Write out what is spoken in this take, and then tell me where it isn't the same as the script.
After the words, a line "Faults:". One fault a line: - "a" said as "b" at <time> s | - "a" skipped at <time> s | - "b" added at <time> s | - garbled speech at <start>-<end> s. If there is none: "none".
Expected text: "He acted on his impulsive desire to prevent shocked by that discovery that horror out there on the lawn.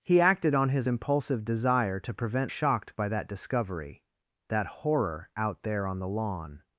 "He acted on his impulsive desire to prevent shocked by that discovery that horror out there on the lawn.
Faults:
none